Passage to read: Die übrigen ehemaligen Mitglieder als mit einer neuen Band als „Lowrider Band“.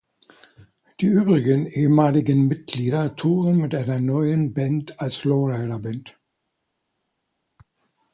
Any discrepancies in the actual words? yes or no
yes